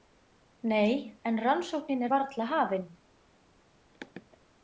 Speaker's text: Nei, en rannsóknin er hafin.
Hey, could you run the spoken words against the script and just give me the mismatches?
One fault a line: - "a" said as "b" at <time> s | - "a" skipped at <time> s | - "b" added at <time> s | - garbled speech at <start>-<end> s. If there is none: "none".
- "varla" added at 2.1 s